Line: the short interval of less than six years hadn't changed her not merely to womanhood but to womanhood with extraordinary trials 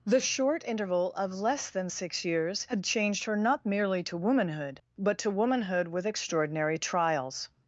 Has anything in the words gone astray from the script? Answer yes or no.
yes